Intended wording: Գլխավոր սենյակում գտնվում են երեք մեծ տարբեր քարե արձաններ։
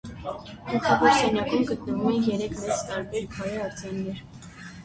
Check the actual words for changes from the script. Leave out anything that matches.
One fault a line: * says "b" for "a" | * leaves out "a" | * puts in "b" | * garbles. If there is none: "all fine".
all fine